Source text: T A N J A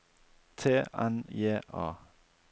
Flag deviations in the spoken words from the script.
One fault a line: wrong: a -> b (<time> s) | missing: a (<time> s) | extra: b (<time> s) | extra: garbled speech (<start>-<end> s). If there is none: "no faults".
missing: A (0.8 s)